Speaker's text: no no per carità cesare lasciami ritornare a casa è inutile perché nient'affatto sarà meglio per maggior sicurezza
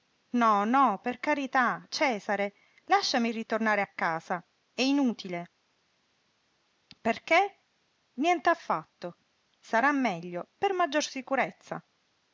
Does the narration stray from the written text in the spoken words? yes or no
no